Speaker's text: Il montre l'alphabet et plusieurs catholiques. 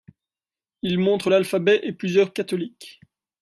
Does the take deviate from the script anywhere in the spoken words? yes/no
no